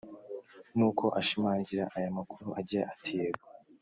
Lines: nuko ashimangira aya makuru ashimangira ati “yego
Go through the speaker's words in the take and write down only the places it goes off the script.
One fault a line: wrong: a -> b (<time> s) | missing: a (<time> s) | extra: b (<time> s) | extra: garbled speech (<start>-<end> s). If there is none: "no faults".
wrong: ashimangira -> agira (2.6 s)